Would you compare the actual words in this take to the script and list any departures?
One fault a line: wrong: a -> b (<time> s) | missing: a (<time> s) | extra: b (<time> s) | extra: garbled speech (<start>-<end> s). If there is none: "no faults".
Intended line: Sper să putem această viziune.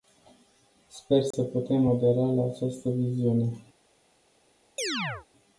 extra: adera la (1.8 s)